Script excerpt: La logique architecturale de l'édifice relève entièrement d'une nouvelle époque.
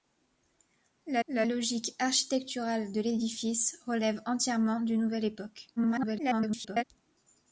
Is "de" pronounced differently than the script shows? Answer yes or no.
no